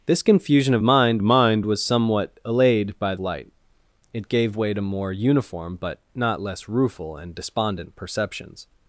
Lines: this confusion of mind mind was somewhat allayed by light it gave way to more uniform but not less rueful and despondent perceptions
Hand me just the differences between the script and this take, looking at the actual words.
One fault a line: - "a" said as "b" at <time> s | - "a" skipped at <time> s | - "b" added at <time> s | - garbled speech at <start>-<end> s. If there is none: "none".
none